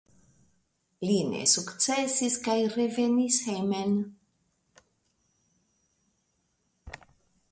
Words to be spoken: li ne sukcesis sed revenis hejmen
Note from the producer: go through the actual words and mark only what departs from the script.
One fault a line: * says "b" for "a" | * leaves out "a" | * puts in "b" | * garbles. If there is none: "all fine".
* says "kaj" for "sed"